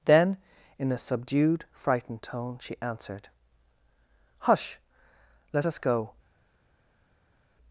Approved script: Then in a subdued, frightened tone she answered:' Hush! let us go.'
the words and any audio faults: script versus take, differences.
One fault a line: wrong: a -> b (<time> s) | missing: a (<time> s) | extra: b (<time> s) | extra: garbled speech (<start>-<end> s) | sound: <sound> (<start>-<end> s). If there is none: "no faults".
no faults